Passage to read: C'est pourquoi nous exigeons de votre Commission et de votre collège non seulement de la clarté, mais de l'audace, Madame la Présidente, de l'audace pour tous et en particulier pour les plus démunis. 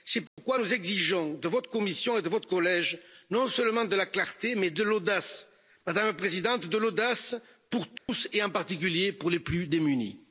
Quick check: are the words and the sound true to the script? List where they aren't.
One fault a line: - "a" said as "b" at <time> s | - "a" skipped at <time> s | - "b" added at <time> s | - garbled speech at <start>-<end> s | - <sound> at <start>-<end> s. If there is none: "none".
- dropout at 0.3-0.4 s
- dropout at 8.0-8.1 s